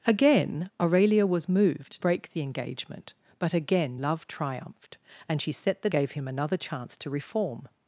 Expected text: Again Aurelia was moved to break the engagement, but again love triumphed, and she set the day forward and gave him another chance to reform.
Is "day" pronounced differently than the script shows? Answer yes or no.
yes